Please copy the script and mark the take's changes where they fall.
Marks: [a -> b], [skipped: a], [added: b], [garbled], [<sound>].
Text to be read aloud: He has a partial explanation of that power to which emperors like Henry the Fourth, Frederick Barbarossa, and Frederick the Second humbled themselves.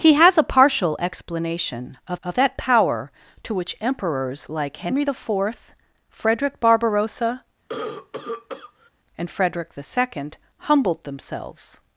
He has a partial explanation of [added: of] that power to which emperors like Henry the Fourth, Frederick Barbarossa, [cough] and Frederick the Second humbled themselves.